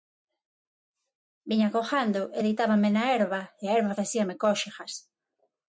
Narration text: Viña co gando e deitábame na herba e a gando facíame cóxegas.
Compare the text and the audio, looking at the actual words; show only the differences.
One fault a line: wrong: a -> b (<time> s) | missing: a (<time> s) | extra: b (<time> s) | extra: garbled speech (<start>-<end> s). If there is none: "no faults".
wrong: gando -> herba (3.8 s)